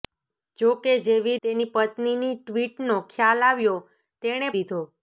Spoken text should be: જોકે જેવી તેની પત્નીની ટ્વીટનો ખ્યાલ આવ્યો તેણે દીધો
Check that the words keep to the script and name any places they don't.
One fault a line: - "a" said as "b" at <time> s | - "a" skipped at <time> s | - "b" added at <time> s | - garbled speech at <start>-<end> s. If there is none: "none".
none